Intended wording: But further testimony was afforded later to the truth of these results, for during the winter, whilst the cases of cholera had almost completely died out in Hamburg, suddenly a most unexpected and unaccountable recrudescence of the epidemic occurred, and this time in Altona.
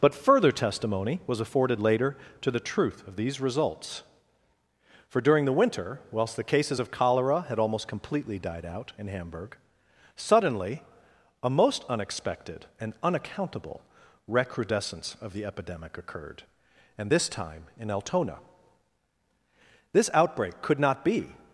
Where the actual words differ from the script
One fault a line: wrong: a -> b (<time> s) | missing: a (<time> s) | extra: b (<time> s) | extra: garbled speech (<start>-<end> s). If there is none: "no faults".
extra: This outbreak could not be (19.9 s)